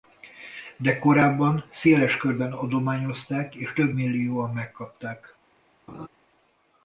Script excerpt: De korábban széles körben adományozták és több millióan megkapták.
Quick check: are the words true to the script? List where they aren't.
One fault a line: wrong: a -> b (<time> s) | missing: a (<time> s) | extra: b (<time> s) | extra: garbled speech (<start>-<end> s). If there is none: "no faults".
no faults